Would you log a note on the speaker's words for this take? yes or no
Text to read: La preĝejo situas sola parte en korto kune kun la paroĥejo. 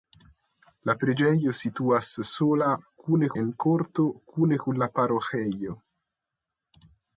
yes